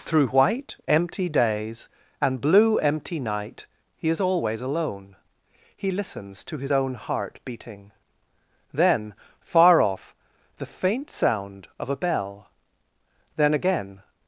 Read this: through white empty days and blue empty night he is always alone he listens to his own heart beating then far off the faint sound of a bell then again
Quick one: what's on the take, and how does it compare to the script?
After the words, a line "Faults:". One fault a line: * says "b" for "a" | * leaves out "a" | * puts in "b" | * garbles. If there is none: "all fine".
through white empty days and blue empty night he is always alone he listens to his own heart beating then far off the faint sound of a bell then again
Faults:
all fine